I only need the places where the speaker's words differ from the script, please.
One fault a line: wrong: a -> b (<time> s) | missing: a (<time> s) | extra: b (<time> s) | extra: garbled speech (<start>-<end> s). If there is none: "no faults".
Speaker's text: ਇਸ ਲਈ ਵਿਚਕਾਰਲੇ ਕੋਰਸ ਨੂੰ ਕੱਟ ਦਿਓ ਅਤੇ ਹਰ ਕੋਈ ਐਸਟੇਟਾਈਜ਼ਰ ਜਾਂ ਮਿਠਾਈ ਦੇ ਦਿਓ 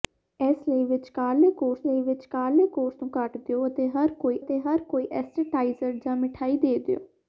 extra: ਲਈ ਵਿਚਕਾਰਲੇ ਕੋਰਸ (1.9 s)
extra: ਅਤੇ ਹਰ ਕੋਈ (4.4 s)